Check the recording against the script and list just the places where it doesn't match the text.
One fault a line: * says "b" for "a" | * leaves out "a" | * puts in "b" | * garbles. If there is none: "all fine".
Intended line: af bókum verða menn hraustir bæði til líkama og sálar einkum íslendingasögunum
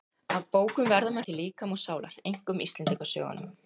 * leaves out "hraustir bæði"